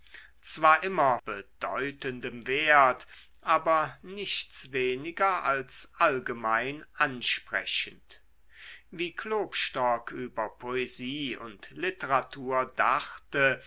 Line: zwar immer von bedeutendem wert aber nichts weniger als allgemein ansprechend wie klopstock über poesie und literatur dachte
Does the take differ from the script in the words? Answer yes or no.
yes